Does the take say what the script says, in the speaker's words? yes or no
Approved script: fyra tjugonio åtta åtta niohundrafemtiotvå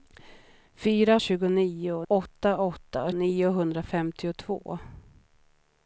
yes